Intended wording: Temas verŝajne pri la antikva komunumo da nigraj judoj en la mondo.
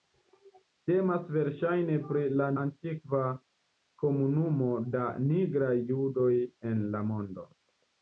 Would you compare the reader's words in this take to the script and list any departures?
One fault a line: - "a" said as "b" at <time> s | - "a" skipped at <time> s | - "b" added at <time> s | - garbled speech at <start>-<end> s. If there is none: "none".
none